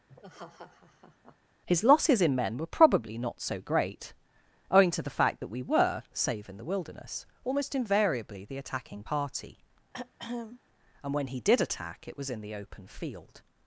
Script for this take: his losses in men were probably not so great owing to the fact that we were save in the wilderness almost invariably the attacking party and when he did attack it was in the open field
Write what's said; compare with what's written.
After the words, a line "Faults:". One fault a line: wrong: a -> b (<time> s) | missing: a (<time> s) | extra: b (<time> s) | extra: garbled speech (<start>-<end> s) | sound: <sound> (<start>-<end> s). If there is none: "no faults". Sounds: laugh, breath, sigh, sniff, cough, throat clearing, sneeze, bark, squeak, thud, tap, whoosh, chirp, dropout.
his losses in men were probably not so great owing to the fact that we were save in the wilderness almost invariably the attacking party and when he did attack it was in the open field
Faults:
sound: laugh (0.1-1.4 s)
sound: throat clearing (9.9-10.6 s)